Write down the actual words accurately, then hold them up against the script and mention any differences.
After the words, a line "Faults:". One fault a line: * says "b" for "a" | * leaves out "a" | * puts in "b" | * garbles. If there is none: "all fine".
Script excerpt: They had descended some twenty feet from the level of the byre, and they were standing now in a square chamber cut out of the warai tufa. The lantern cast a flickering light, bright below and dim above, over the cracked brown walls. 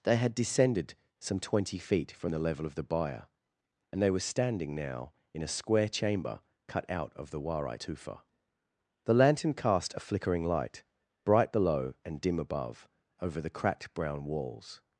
They had descended some twenty feet from the level of the byre, and they were standing now in a square chamber cut out of the warai tufa. The lantern cast a flickering light, bright below and dim above, over the cracked brown walls.
Faults:
all fine